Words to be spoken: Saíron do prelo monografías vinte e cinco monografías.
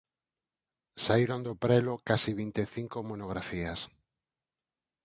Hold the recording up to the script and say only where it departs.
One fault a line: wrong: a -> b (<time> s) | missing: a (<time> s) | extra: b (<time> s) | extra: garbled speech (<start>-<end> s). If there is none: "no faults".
wrong: monografías -> case (2.1 s)